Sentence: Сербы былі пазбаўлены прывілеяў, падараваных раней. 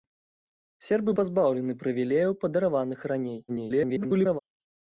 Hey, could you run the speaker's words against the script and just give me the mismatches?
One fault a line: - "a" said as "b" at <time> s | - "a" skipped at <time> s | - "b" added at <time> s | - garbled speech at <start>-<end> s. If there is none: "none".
- "былі" skipped at 1.1 s
- garbled speech at 3.5-4.4 s